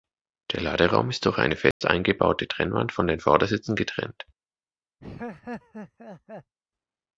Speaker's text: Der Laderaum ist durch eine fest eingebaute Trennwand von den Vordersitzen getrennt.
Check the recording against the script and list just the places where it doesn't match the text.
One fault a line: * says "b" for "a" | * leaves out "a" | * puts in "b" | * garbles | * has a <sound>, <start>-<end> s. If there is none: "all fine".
* has a dropout, 1.7-1.8 s
* has a laugh, 5.0-6.5 s